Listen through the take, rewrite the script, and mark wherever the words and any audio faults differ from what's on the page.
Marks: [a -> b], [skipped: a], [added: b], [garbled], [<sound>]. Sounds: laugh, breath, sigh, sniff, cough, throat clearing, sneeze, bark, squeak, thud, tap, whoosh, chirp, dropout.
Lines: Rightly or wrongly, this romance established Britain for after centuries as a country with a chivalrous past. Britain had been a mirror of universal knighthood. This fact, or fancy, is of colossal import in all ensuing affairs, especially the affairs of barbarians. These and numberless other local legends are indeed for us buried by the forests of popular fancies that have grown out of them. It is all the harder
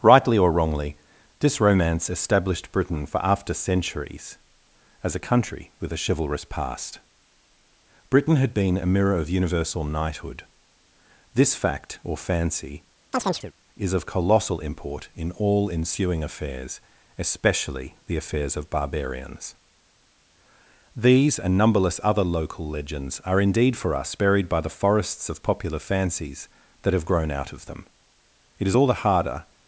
Rightly or wrongly, this romance established Britain for after centuries as a country with a chivalrous past. Britain had been a mirror of universal knighthood. This fact, or fancy, [chirp] is of colossal import in all ensuing affairs, especially the affairs of barbarians. These and numberless other local legends are indeed for us buried by the forests of popular fancies that have grown out of them. It is all the harder